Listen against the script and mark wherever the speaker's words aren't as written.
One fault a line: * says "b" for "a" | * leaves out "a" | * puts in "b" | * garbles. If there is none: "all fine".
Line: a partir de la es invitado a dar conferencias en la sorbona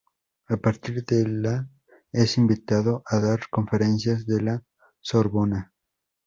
all fine